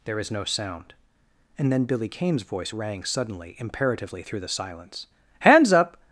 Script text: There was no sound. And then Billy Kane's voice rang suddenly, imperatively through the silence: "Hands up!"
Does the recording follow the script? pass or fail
fail